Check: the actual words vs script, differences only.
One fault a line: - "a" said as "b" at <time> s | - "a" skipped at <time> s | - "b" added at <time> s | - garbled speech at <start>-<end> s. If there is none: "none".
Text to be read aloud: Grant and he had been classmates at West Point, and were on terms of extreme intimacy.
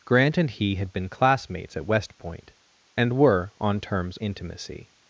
- "of extreme" skipped at 4.2 s